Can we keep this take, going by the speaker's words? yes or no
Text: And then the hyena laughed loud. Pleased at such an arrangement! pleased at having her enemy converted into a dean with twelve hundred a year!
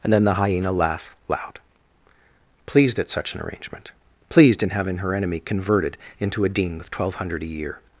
no